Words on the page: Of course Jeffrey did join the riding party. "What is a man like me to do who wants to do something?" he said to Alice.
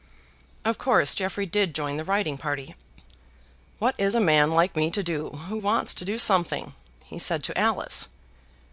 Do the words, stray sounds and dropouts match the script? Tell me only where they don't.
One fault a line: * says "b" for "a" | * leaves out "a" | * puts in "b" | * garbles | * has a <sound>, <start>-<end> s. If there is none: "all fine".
all fine